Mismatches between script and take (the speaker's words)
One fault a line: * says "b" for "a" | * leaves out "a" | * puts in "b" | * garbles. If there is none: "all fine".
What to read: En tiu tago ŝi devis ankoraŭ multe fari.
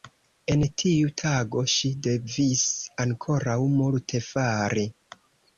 all fine